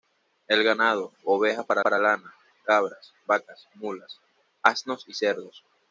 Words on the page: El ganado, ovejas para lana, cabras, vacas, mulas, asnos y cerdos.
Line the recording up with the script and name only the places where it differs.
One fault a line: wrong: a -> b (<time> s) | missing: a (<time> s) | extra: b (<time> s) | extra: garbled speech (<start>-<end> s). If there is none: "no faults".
extra: para (1.8 s)